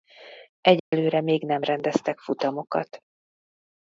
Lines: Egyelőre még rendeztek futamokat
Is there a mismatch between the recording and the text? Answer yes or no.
yes